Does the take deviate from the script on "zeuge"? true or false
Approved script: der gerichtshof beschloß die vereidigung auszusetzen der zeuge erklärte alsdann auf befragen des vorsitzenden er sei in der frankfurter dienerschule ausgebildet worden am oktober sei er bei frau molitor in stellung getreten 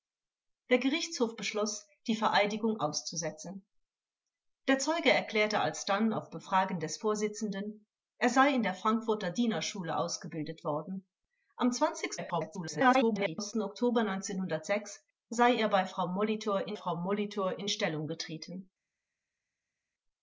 false